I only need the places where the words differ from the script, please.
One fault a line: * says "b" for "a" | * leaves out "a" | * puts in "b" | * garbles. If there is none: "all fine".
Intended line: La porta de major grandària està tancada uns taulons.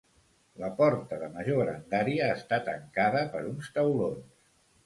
* puts in "per"